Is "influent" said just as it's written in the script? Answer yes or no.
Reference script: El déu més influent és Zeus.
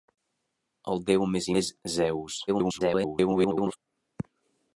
no